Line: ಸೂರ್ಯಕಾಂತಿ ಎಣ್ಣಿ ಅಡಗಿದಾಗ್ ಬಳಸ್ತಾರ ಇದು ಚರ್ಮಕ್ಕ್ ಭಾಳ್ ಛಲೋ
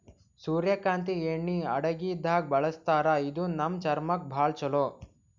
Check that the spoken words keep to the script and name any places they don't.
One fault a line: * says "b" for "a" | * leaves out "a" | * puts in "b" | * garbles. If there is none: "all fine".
* puts in "ನಮ್"